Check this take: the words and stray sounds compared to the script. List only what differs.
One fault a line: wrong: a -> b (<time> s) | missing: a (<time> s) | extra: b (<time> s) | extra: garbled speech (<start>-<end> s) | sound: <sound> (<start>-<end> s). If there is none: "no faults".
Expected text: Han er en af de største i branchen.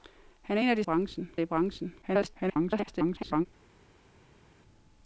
wrong: største -> branchen (0.8 s)
extra: garbled speech (2.0-3.5 s)